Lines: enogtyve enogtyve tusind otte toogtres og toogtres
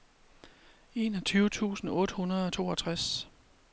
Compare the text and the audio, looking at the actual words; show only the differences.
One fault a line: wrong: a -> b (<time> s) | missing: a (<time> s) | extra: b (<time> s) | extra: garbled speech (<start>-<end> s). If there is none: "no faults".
missing: enogtyve (1.5 s)
wrong: toogtres -> hundrede (2.2 s)